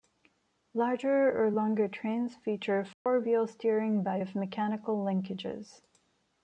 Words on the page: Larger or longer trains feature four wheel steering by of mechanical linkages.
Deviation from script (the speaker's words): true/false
false